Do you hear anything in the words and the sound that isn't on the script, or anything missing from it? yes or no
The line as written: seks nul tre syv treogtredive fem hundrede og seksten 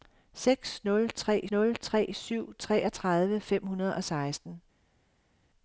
yes